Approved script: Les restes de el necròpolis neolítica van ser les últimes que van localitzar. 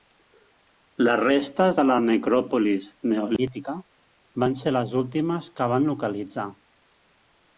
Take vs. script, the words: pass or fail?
fail